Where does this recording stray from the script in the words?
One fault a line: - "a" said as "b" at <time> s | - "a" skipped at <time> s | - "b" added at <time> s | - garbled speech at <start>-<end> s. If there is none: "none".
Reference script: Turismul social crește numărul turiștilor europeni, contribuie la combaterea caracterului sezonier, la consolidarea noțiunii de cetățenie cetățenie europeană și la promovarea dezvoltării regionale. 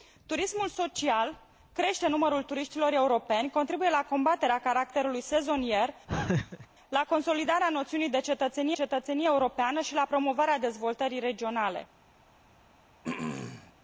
none